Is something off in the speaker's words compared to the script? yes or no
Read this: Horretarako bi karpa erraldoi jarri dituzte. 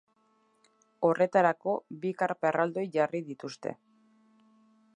no